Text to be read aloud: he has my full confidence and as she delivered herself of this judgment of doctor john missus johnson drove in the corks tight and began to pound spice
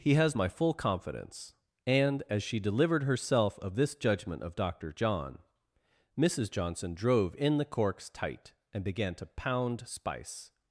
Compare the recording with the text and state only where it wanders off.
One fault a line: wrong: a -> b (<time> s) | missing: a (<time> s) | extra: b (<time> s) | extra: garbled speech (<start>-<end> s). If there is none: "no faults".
no faults